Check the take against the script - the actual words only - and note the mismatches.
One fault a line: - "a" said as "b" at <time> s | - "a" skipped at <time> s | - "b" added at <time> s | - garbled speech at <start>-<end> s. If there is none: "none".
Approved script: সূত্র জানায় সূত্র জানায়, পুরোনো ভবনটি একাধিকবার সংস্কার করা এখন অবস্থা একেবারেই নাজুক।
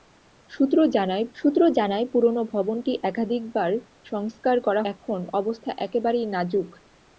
none